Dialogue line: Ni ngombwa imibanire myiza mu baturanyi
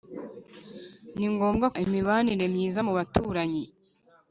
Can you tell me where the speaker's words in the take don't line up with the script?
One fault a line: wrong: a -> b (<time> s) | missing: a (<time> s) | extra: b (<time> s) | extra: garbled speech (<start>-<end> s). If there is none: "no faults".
no faults